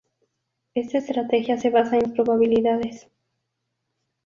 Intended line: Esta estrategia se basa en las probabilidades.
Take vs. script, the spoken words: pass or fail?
pass